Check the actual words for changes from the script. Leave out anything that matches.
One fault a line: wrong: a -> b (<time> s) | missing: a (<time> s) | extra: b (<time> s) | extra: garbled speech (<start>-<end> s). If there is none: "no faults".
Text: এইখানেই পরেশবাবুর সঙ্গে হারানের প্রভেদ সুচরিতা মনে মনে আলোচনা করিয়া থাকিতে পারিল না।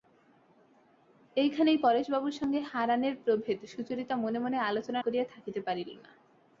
no faults